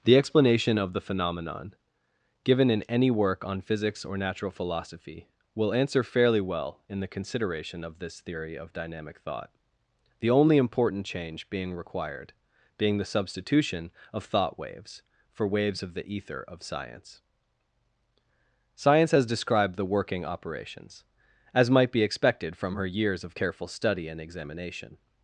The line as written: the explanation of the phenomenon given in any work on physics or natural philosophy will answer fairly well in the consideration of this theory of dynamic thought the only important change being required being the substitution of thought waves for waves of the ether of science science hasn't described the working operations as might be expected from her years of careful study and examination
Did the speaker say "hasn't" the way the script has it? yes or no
no